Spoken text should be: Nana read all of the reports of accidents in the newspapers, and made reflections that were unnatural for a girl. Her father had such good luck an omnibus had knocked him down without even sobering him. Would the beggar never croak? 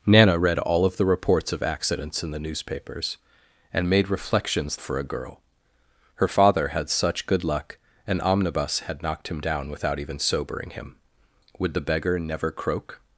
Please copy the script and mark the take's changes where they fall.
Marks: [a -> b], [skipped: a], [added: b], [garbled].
Nana read all of the reports of accidents in the newspapers, and made reflections [skipped: that were unnatural] for a girl. Her father had such good luck an omnibus had knocked him down without even sobering him. Would the beggar never croak?